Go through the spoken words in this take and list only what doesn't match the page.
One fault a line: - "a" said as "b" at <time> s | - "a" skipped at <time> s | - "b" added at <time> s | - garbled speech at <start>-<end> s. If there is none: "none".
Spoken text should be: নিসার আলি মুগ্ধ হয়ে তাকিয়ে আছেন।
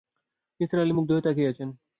none